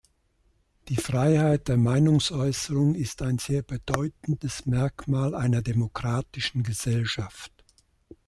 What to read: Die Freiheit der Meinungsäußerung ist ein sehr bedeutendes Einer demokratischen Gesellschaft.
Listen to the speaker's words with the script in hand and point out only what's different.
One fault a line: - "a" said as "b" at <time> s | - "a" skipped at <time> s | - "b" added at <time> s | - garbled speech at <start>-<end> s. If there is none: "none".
- "Merkmal" added at 4.6 s